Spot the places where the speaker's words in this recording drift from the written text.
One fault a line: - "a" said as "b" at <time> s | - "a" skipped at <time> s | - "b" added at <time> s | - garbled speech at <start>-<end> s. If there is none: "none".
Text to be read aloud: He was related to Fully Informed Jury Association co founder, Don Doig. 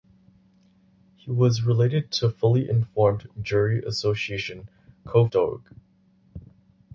- "founder Don" skipped at 5.3 s